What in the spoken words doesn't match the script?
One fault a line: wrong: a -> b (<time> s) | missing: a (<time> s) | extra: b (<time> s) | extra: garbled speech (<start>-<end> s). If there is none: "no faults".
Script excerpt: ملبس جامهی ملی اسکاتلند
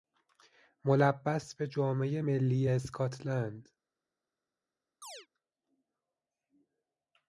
extra: به (1.6 s)